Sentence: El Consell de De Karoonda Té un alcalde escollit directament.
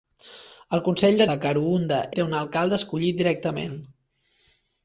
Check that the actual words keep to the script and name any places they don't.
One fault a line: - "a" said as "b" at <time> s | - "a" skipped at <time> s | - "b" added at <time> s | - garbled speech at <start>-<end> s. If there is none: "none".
none